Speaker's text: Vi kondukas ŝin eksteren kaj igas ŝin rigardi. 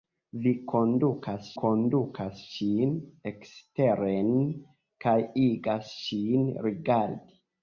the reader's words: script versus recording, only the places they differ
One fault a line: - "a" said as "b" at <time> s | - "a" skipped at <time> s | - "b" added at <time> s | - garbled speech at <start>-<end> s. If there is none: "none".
- "kondukas" added at 1.6 s